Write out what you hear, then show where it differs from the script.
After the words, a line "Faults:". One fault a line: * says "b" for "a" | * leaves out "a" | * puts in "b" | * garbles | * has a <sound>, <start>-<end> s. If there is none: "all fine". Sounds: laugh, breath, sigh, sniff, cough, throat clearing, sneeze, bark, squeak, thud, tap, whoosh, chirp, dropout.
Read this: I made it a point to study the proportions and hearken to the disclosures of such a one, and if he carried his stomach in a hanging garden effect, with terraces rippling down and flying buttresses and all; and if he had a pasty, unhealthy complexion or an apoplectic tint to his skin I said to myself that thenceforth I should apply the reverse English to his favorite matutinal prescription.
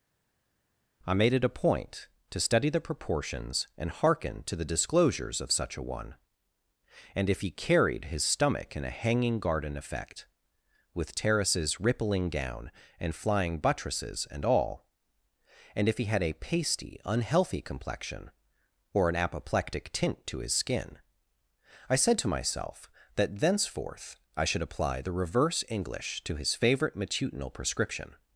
I made it a point to study the proportions and hearken to the disclosures of such a one, and if he carried his stomach in a hanging garden effect, with terraces rippling down and flying buttresses and all; and if he had a pasty, unhealthy complexion or an apoplectic tint to his skin I said to myself that thenceforth I should apply the reverse English to his favorite matutinal prescription.
Faults:
all fine